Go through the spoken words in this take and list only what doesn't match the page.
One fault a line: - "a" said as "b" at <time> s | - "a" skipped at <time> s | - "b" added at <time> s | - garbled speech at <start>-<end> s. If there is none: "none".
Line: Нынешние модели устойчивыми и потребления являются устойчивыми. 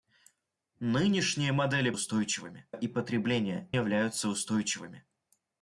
none